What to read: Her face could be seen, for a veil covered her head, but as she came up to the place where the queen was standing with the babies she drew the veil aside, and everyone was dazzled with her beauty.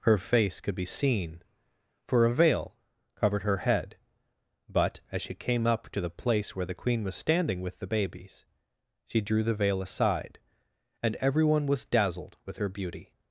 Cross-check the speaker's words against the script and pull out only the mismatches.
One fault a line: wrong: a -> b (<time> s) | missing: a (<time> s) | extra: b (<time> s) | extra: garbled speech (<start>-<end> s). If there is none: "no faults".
no faults